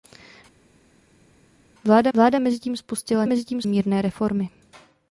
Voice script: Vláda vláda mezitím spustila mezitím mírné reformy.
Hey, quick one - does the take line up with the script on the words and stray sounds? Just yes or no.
yes